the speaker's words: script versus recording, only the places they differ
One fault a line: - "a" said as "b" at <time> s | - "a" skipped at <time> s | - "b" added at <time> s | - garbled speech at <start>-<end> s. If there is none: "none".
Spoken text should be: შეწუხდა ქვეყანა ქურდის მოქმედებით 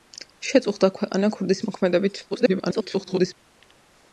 - garbled speech at 2.3-3.3 s